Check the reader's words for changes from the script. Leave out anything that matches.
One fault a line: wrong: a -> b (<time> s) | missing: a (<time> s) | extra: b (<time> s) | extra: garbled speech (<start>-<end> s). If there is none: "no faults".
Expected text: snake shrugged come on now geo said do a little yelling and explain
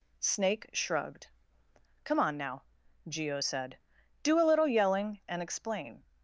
no faults